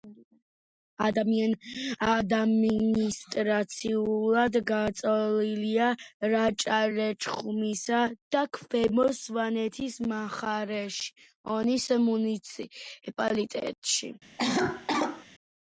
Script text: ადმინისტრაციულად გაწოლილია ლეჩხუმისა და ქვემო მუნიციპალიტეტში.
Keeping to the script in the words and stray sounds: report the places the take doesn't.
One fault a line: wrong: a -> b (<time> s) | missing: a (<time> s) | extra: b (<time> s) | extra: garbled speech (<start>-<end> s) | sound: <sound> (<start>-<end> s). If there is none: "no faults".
extra: რაჭა (6.3 s)
extra: სვანეთის მხარეში ონის (9.2 s)
sound: cough (14.4-15.3 s)